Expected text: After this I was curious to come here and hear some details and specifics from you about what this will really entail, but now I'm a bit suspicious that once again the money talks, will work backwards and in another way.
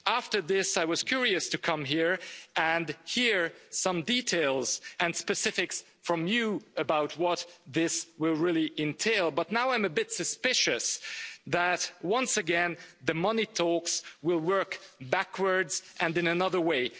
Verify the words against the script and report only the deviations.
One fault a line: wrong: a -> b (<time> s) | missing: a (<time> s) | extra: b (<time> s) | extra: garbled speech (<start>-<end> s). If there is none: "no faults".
no faults